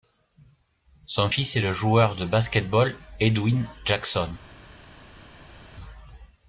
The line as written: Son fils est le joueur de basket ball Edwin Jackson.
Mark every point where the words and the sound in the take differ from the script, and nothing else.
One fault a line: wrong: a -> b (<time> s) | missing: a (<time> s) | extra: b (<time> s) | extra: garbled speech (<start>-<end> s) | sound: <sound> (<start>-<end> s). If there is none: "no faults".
no faults